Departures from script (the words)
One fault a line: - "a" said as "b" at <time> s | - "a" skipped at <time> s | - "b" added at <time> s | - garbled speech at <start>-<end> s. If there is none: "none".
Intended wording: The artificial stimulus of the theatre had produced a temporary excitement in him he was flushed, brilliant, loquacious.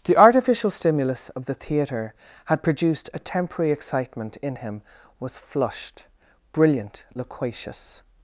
- "he" skipped at 4.8 s